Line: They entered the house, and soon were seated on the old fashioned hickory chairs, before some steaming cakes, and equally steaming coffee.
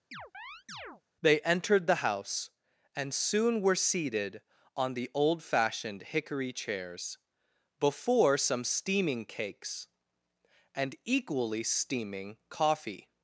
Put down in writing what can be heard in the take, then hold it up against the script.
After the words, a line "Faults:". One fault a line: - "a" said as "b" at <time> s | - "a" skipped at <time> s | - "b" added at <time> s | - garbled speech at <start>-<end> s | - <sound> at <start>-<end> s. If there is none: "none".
They entered the house, and soon were seated on the old fashioned hickory chairs, before some steaming cakes, and equally steaming coffee.
Faults:
- chirp at 0.1-1.0 s